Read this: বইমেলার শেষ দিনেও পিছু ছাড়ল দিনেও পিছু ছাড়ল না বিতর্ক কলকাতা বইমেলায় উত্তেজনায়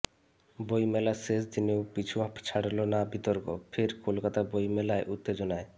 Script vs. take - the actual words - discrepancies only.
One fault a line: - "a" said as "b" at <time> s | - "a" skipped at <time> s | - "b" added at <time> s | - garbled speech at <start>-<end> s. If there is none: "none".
- "দিনেও পিছু ছাড়ল" skipped at 2.8 s
- "ফের" added at 3.7 s